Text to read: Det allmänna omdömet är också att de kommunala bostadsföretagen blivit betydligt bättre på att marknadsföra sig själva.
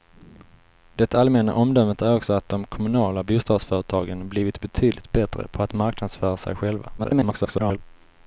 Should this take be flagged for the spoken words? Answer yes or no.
yes